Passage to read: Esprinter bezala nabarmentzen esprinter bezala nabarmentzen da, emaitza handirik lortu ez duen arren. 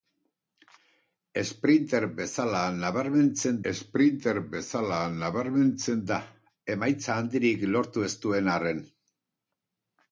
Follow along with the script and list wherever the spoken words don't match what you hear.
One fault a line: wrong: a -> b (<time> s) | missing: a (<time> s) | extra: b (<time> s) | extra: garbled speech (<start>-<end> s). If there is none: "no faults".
no faults